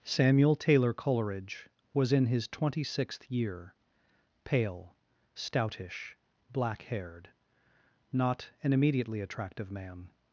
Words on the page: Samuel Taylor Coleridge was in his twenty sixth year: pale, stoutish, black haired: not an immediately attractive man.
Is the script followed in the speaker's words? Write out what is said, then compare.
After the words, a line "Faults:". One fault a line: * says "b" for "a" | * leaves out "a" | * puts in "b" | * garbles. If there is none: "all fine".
Samuel Taylor Coleridge was in his twenty sixth year: pale, stoutish, black haired: not an immediately attractive man.
Faults:
all fine